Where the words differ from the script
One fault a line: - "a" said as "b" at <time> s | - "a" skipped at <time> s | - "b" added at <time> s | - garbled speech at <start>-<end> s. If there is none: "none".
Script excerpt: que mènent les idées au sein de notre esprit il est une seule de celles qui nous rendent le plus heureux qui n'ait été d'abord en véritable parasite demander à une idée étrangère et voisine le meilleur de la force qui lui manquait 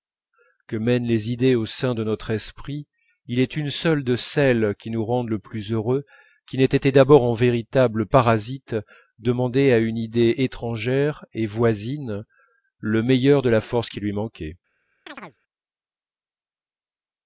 none